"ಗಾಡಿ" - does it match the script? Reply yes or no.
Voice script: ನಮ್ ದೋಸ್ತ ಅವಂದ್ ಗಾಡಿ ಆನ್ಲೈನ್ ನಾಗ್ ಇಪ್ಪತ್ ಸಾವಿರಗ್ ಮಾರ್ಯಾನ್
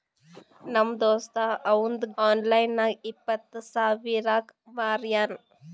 no